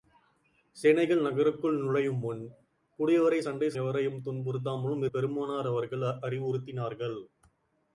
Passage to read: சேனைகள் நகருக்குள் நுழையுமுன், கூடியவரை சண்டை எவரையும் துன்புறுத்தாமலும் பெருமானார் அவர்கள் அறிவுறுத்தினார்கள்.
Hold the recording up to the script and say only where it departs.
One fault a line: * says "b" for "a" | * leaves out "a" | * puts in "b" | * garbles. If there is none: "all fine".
all fine